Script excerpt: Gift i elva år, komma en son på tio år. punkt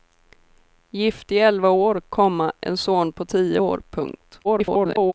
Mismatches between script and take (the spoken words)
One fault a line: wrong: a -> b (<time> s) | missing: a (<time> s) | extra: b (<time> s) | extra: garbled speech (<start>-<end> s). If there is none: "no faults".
extra: garbled speech (4.4-5.1 s)